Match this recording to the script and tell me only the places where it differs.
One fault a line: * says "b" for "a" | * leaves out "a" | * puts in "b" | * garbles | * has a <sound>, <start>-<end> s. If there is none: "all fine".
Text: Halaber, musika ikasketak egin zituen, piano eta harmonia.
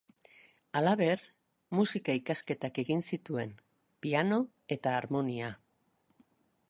all fine